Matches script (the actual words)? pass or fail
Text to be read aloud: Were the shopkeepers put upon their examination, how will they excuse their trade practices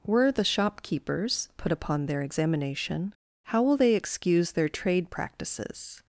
pass